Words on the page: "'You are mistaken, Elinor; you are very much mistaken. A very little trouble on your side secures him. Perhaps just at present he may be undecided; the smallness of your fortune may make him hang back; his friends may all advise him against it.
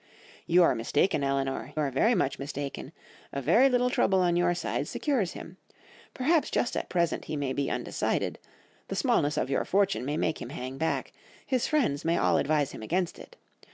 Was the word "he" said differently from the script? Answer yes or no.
no